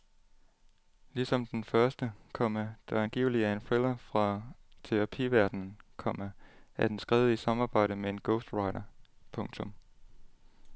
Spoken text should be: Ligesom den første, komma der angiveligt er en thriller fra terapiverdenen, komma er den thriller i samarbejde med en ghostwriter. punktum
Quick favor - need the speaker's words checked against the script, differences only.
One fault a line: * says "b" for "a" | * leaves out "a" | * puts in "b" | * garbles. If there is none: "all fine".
* says "skrevet" for "thriller"